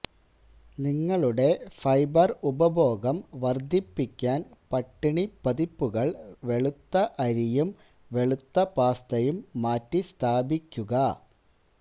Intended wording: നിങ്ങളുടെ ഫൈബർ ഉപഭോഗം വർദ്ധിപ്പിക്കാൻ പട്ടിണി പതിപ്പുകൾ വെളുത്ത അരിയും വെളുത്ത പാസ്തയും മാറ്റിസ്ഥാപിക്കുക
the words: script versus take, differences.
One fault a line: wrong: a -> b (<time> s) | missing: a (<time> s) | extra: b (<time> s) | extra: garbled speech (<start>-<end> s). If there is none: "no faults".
no faults